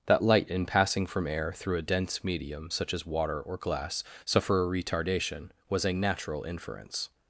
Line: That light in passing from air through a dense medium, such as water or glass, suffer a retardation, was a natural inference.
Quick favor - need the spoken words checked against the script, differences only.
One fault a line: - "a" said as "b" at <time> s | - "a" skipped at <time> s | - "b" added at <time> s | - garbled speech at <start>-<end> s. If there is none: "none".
none